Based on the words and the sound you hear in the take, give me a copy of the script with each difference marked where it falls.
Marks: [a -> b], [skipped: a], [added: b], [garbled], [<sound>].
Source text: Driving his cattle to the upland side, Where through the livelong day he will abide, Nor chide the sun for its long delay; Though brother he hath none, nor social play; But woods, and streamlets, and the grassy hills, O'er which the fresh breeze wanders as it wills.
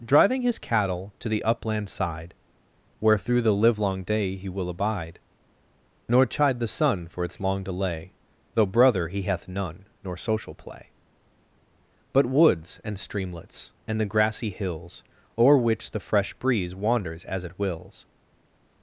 Driving his cattle to the upland side, Where through the livelong day he will abide, Nor chide the sun for its long delay; Though brother he hath none, nor social play; But woods, and streamlets, and the grassy hills, O'er which the fresh breeze wanders as it wills.